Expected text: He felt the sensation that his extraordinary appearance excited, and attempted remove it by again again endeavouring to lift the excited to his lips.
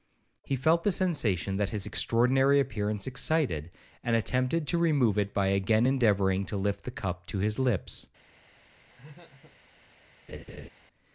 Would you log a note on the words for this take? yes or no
yes